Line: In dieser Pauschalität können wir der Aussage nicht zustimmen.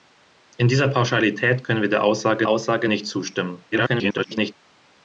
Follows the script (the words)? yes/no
no